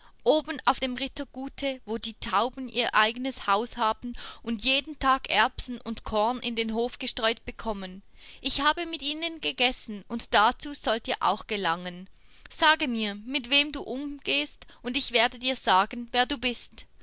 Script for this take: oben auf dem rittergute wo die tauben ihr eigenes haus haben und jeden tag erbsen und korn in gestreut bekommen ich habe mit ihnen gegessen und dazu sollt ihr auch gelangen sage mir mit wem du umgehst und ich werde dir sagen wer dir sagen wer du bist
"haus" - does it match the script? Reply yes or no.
yes